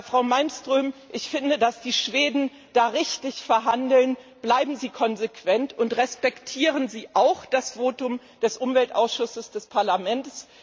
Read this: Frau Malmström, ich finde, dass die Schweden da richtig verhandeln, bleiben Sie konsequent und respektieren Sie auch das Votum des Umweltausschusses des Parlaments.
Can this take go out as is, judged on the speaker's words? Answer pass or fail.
pass